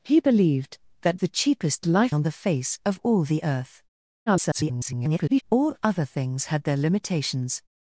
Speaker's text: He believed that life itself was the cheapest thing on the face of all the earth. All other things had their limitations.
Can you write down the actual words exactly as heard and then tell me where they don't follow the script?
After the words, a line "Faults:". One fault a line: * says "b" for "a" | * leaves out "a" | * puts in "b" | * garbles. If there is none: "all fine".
He believed that the cheapest life on the face of all the earth. [garbled] All other things had their limitations.
Faults:
* leaves out "life itself was"
* says "life" for "thing"
* garbles